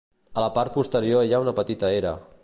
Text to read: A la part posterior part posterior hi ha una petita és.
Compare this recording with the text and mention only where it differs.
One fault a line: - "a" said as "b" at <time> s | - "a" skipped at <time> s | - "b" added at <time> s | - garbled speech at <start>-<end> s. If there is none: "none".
- "part posterior" skipped at 1.3 s
- "és" said as "era" at 2.0 s